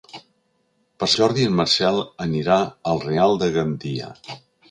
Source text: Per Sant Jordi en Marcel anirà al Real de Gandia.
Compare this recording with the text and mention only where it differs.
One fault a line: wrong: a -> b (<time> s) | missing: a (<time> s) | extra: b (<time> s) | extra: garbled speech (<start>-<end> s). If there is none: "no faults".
missing: Sant (1.1 s)